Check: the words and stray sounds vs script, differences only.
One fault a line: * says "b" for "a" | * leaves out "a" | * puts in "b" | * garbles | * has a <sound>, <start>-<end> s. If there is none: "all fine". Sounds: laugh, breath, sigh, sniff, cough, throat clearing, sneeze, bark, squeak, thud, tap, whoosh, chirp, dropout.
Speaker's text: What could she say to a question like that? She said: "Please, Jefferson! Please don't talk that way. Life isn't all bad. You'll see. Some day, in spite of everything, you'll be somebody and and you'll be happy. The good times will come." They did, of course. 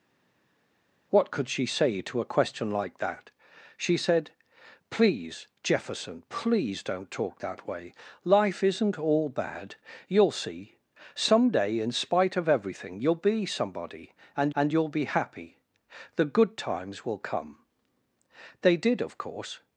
all fine